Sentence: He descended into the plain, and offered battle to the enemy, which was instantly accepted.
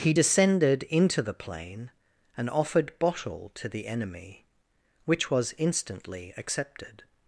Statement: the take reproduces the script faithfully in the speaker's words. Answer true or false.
false